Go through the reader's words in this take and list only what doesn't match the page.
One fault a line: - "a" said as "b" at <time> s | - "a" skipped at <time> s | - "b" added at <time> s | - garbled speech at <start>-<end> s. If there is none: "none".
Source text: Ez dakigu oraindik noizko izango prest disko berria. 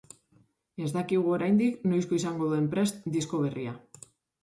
- "duen" added at 2.5 s